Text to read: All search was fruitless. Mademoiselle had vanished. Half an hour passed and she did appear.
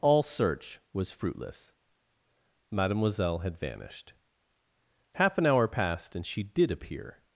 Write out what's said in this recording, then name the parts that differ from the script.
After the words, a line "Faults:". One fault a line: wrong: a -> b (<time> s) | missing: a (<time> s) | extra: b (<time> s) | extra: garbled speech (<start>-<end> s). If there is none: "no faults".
All search was fruitless. Mademoiselle had vanished. Half an hour passed and she did appear.
Faults:
no faults